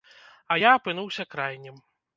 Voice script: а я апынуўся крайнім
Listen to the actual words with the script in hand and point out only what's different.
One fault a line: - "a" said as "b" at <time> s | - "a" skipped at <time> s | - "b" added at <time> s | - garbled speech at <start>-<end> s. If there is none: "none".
none